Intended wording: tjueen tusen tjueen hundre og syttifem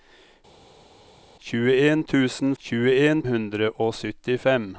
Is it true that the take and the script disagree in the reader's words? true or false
false